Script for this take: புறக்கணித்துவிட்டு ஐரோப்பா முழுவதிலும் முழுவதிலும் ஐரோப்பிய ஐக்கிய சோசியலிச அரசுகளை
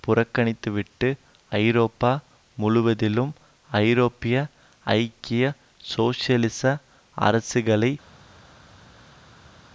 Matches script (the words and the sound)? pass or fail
fail